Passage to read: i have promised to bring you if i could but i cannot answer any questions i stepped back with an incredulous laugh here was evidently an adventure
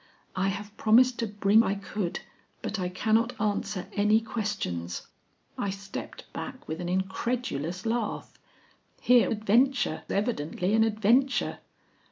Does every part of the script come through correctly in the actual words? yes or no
no